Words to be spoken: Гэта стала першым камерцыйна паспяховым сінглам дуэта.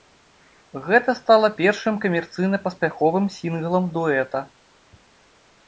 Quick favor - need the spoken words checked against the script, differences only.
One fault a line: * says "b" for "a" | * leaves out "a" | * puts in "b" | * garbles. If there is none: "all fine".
all fine